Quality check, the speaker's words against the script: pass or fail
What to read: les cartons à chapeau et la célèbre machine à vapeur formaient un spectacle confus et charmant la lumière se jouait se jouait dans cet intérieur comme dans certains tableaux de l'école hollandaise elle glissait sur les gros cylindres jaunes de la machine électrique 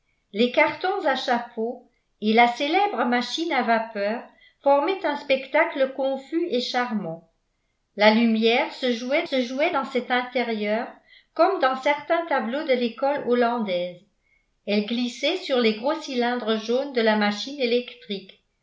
pass